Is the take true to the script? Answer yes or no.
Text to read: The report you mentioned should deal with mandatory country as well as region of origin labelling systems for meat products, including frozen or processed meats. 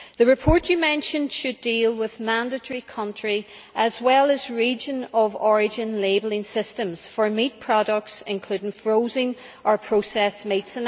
yes